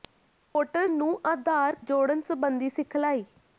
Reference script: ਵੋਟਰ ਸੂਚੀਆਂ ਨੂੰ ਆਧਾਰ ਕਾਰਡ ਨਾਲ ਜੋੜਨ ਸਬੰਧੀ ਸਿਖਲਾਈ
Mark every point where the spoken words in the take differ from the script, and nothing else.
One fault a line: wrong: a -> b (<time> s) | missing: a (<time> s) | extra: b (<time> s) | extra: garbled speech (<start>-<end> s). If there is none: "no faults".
missing: ਸੂਚੀਆਂ (0.9 s)
missing: ਕਾਰਡ ਨਾਲ (1.8 s)